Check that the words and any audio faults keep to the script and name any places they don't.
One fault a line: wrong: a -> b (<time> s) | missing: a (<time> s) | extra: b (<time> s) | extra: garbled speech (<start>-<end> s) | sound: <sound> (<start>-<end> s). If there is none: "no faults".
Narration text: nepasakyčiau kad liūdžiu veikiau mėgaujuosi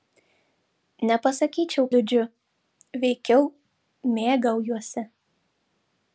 missing: kad (1.9 s)